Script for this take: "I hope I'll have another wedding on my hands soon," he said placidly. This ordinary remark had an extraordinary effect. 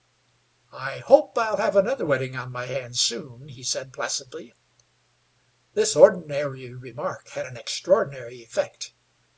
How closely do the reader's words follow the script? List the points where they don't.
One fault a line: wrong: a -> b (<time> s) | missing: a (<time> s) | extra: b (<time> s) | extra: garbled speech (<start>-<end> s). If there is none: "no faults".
no faults